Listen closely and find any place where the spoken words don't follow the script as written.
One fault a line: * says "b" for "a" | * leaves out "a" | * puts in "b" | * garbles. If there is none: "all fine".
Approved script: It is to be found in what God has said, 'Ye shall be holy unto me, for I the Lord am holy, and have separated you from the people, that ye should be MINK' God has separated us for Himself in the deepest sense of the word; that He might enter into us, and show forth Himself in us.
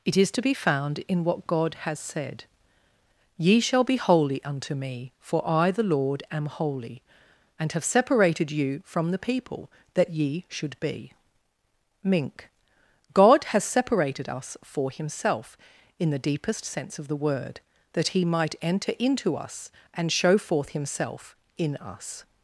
all fine